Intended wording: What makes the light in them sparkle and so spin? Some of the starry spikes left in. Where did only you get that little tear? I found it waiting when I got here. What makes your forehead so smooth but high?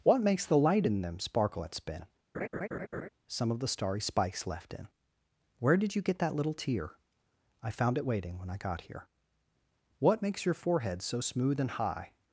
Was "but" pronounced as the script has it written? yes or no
no